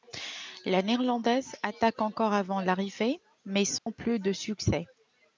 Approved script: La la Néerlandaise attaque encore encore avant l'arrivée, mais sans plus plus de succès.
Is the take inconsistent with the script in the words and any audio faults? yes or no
yes